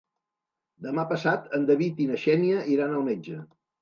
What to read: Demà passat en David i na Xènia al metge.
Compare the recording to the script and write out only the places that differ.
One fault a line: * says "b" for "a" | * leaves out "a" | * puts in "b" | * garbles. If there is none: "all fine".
* puts in "iran"